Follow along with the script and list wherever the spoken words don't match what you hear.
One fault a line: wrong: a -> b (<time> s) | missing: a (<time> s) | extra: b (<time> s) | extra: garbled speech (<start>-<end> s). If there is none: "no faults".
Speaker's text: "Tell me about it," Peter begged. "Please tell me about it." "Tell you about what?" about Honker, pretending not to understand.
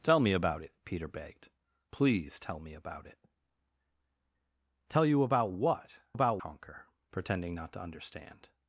no faults